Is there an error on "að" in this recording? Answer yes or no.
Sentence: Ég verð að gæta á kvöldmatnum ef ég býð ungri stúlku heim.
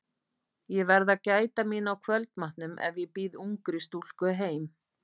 no